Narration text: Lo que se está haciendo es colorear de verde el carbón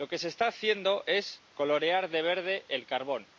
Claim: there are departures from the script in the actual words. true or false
false